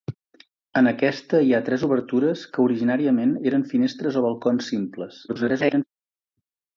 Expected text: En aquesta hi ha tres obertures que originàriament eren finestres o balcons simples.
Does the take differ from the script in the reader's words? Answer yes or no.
yes